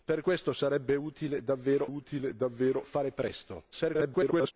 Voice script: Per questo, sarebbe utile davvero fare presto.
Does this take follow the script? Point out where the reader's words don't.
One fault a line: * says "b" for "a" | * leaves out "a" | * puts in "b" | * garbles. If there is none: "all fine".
* puts in "utile davvero"
* garbles